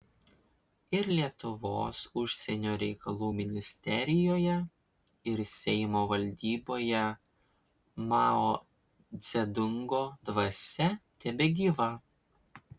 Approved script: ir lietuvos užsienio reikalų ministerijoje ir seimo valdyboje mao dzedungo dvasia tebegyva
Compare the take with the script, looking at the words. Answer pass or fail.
pass